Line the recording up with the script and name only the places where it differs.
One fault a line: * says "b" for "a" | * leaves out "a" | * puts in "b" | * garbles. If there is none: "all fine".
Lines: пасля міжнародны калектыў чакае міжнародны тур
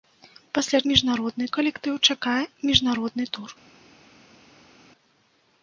all fine